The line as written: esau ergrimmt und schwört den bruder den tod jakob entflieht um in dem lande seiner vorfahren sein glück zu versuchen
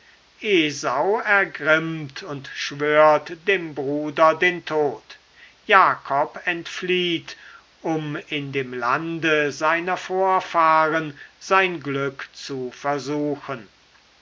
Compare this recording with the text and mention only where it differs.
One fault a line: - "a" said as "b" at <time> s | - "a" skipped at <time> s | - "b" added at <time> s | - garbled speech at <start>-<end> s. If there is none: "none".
- "den" said as "dem" at 3.5 s